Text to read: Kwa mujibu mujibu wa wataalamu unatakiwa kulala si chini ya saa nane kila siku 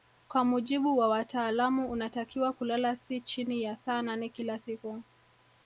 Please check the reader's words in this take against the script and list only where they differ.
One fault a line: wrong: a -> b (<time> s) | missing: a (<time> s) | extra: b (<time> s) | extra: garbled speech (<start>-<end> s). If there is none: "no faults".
missing: mujibu (1.0 s)